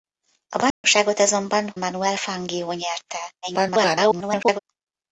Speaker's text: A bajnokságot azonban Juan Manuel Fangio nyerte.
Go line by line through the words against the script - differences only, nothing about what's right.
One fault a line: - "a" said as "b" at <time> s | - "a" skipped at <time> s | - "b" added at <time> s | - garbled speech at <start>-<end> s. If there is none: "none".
- "Juan" skipped at 1.7 s
- garbled speech at 3.4-4.6 s